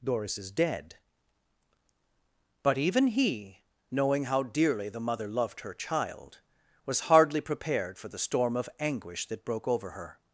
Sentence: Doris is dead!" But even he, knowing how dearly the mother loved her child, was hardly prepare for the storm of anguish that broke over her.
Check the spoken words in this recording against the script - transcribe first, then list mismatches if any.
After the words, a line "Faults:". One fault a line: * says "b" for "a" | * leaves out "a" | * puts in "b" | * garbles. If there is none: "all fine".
Doris is dead!" But even he, knowing how dearly the mother loved her child, was hardly prepared for the storm of anguish that broke over her.
Faults:
* says "prepared" for "prepare"